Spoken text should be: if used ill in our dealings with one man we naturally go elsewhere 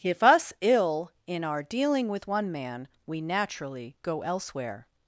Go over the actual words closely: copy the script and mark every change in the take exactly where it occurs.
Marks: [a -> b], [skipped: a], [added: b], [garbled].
if [used -> us] ill in our [dealings -> dealing] with one man we naturally go elsewhere